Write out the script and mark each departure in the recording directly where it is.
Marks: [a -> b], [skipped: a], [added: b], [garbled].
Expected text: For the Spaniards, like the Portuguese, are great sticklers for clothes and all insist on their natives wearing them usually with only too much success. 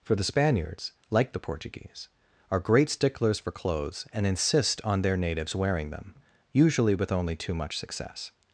For the Spaniards, like the Portuguese, are great sticklers for clothes and [skipped: all] insist on their natives wearing them usually with only too much success.